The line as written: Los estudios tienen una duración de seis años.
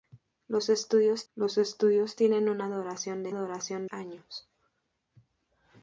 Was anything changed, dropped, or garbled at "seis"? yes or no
yes